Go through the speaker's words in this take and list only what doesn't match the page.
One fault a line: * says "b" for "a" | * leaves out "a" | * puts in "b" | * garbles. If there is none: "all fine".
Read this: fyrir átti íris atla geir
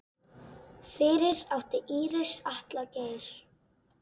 all fine